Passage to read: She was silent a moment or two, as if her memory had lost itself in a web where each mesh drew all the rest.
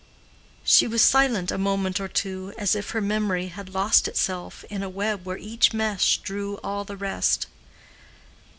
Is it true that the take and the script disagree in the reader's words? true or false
false